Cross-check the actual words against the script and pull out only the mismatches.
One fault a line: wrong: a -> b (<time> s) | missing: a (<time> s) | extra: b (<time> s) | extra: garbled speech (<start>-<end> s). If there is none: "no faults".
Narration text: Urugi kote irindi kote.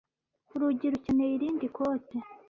wrong: kote -> rukeneye (0.9 s)